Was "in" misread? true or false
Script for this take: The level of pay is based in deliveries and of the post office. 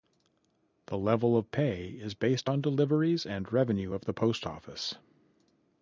true